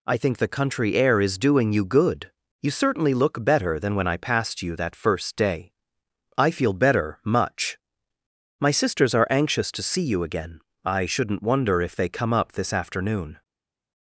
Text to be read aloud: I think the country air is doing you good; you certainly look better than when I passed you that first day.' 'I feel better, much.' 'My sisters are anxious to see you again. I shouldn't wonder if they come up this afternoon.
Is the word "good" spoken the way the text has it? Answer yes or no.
yes